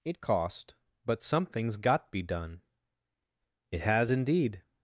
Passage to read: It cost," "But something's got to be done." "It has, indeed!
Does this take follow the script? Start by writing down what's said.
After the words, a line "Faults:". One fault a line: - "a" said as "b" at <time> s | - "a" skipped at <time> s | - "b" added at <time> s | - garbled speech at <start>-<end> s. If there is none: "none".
It cost," "But something's got be done." "It has, indeed!
Faults:
- "to" skipped at 2.1 s